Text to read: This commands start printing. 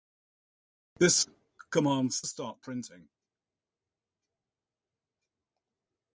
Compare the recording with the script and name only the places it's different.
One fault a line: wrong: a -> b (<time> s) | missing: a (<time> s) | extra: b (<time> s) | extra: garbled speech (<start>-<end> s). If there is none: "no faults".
no faults